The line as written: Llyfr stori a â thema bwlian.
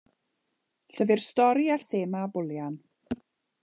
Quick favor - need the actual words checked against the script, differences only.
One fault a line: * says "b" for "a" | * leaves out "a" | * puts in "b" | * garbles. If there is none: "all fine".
all fine